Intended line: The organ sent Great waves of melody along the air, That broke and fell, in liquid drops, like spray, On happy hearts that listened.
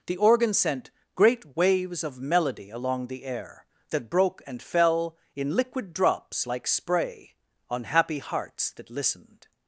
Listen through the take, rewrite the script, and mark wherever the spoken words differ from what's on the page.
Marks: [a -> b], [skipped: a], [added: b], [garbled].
The organ sent Great waves of melody along the air, That broke and fell, in liquid drops, like spray, On happy hearts that listened.